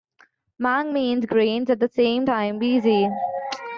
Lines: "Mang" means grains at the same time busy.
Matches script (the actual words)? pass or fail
pass